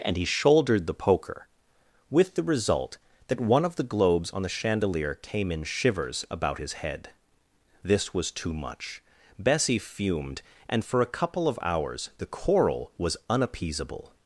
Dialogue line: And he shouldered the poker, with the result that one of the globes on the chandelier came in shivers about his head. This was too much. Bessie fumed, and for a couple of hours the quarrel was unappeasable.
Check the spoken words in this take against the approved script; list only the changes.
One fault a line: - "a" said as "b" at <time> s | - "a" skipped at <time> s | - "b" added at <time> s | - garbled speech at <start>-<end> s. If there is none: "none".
none